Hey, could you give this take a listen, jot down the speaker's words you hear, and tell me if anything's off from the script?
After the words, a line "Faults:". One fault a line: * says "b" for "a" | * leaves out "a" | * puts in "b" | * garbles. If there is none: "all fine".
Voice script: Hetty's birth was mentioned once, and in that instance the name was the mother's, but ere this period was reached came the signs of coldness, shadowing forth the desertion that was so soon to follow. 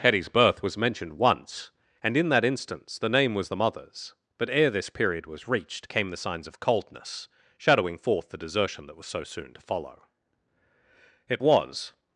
Hetty's birth was mentioned once, and in that instance the name was the mother's, but ere this period was reached came the signs of coldness, shadowing forth the desertion that was so soon to follow. It was
Faults:
* puts in "It was"